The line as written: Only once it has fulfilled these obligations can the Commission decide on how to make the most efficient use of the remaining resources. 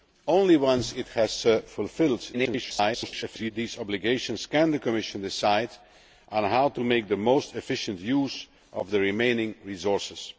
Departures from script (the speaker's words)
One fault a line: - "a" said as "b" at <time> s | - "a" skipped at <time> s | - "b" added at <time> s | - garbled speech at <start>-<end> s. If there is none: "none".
- garbled speech at 2.3-3.5 s